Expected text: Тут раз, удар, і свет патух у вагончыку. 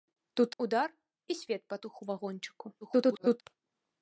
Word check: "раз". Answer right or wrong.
wrong